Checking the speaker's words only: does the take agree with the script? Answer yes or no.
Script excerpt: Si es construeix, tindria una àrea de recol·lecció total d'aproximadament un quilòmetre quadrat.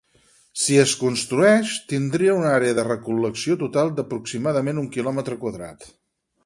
yes